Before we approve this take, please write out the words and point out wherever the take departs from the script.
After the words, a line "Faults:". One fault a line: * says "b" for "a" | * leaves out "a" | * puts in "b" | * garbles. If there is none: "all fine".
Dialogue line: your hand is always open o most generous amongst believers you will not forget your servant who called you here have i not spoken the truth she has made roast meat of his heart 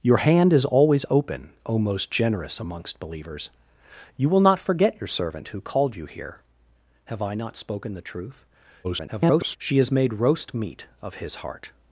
your hand is always open o most generous amongst believers you will not forget your servant who called you here have i not spoken the truth [garbled] she has made roast meat of his heart
Faults:
* garbles